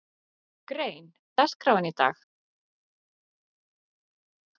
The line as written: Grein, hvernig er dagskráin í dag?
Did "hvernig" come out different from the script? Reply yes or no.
yes